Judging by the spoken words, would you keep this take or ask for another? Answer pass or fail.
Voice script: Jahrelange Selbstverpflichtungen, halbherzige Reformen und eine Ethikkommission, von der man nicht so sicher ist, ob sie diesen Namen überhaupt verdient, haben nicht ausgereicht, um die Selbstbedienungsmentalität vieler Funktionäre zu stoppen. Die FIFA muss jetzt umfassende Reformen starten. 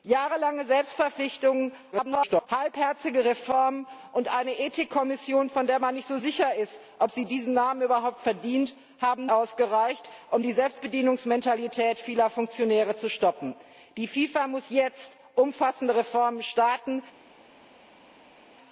fail